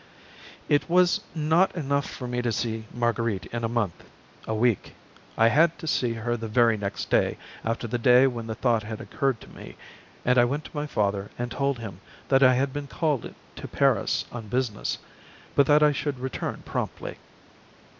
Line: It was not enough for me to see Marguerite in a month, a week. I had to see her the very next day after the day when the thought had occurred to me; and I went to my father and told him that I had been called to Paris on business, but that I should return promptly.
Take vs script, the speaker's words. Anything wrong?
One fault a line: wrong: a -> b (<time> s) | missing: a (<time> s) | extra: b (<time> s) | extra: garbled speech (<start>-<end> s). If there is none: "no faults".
no faults